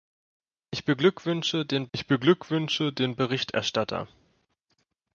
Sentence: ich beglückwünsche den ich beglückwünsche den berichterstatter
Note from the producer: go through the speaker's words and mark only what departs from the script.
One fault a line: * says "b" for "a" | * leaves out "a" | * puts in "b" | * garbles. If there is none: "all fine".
all fine